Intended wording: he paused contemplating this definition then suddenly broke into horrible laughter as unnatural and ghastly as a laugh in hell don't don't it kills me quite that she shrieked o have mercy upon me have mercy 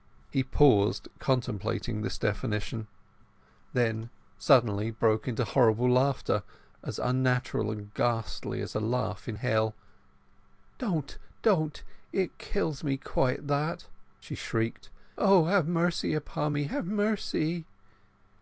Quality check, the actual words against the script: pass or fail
pass